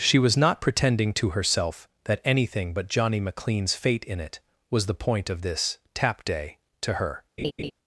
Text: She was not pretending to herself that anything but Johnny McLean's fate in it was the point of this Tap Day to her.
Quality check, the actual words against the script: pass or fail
pass